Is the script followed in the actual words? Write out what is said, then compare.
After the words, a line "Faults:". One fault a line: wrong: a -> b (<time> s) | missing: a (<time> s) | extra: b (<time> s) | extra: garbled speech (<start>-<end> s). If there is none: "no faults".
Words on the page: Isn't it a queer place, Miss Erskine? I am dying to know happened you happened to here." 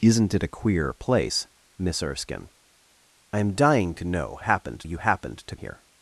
Isn't it a queer place, Miss Erskine? I am dying to know happened you happened to here."
Faults:
no faults